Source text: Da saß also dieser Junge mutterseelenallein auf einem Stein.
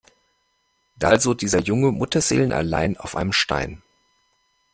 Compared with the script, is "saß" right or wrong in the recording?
wrong